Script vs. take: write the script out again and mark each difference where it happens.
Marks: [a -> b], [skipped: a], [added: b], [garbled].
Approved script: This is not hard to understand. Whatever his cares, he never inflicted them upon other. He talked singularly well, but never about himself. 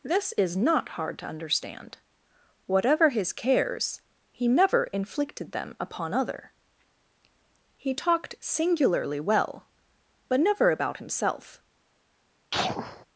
This is not hard to understand. Whatever his cares, he never inflicted them upon other. He talked singularly well, but never about himself.